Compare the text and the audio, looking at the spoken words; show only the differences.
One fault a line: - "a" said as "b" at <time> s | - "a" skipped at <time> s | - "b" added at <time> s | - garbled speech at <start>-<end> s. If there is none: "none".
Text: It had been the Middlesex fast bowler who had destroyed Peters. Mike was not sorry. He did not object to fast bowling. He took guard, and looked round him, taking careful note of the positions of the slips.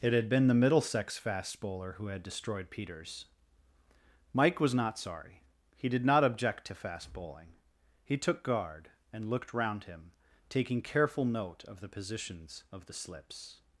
none